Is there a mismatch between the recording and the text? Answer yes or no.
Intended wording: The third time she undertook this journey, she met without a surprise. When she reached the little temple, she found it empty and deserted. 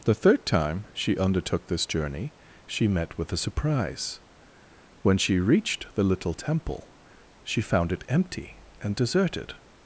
yes